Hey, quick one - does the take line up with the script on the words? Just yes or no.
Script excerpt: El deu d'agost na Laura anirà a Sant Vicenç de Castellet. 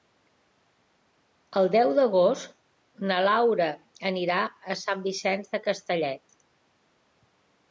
yes